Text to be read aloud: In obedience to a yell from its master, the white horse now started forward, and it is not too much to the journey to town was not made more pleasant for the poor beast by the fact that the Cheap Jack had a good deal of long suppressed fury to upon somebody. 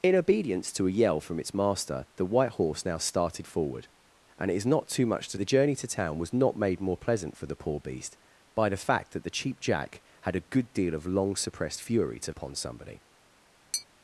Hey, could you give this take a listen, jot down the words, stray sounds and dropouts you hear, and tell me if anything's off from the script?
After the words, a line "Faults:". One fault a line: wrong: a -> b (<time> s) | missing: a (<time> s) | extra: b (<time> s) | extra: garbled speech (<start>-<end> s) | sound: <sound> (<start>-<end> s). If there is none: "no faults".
In obedience to a yell from its master, the white horse now started forward, and it is not too much to the journey to town was not made more pleasant for the poor beast by the fact that the Cheap Jack had a good deal of long suppressed fury to upon somebody.
Faults:
sound: tap (13.7-13.9 s)